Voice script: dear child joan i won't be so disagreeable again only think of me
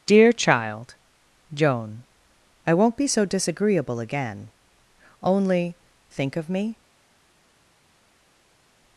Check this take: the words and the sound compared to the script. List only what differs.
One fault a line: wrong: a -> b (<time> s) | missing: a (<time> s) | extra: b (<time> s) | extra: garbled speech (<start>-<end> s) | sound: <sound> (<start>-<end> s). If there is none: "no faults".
no faults